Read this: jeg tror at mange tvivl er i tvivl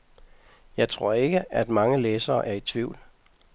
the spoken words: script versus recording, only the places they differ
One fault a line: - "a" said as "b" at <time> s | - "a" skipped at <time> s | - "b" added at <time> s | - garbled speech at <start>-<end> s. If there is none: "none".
- "ikke" added at 1.1 s
- "tvivl" said as "læsere" at 2.0 s